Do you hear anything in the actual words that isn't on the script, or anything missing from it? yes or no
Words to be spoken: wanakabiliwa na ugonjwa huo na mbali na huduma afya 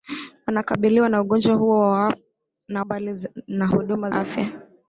no